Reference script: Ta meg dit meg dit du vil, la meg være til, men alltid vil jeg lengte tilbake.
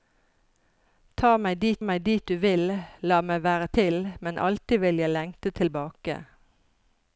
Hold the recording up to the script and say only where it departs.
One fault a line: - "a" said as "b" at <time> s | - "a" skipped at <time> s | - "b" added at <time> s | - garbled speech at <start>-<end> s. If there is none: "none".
none